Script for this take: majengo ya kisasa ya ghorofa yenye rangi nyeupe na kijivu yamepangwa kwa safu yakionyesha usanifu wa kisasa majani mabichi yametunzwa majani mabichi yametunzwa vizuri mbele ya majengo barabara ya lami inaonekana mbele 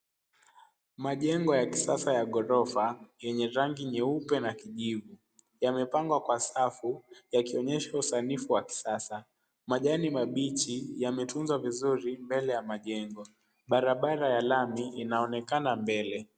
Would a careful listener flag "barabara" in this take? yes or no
no